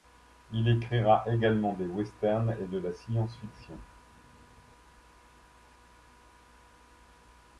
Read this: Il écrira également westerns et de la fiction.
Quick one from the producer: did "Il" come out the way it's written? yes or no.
yes